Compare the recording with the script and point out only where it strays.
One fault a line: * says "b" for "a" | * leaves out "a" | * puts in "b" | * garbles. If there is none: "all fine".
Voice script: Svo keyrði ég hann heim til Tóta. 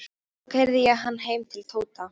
all fine